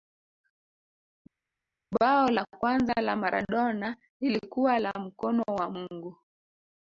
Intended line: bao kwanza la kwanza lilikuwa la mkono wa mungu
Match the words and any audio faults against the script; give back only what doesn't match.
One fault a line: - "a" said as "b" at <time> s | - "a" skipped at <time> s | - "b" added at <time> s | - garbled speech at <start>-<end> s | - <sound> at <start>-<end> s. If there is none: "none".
- "la" added at 2.3 s
- "kwanza" said as "maradona" at 3.2 s